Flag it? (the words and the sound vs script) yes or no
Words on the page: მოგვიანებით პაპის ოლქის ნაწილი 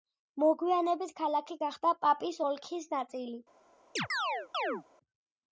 yes